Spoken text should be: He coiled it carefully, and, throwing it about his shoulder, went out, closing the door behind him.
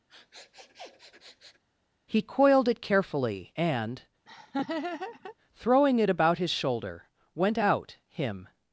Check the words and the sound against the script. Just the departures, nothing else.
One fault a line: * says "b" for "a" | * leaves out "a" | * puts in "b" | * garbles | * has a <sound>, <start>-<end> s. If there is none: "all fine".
* has a sniff, 0.1-1.6 s
* has a laugh, 4.3-5.4 s
* leaves out "closing the door behind"